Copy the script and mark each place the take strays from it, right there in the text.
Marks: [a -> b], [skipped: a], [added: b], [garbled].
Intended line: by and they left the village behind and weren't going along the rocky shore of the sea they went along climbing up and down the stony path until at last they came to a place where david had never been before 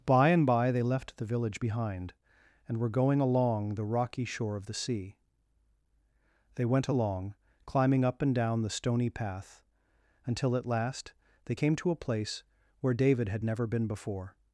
by and [added: by] they left the village behind and [weren't -> were] going along the rocky shore of the sea they went along climbing up and down the stony path until at last they came to a place where david had never been before